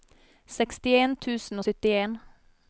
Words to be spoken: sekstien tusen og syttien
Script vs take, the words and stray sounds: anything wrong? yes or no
no